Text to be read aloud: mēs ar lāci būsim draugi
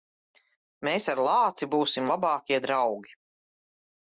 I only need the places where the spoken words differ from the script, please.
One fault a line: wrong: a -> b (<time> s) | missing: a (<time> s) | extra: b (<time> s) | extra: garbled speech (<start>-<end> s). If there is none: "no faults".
extra: labākie (2.1 s)